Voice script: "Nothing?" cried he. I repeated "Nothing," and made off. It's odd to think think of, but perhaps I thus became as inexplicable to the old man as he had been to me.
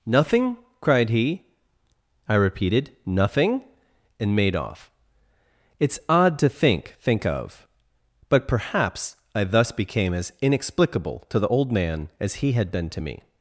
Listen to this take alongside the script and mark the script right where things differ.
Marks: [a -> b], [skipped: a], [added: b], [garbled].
"Nothing?" cried he. I repeated "Nothing," and made off. It's odd to think think of, but perhaps I thus became as inexplicable to the old man as he had been to me.